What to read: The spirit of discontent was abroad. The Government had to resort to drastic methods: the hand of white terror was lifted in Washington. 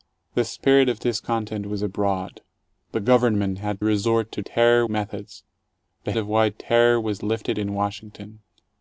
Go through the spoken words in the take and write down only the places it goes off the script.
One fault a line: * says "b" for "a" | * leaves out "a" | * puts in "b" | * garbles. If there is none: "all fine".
* leaves out "to"
* says "terror" for "drastic"
* leaves out "hand"